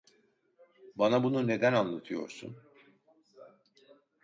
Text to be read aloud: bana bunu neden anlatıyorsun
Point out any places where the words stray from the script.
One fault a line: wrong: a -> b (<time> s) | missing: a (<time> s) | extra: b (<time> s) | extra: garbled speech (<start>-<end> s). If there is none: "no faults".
no faults